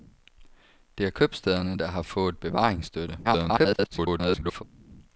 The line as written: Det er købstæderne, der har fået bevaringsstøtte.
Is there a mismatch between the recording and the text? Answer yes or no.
yes